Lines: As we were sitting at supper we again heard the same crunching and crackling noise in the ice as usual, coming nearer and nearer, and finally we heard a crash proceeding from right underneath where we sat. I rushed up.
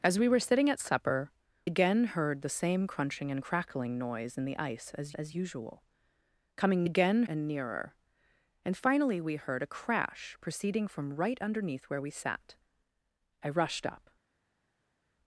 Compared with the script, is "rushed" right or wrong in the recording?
right